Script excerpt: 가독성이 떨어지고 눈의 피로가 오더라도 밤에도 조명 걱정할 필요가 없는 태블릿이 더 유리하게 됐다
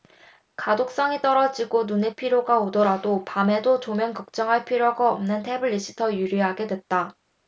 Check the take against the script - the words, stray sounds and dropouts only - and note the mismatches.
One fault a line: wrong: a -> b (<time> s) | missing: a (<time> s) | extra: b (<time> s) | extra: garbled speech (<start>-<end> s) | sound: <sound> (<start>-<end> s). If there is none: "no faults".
no faults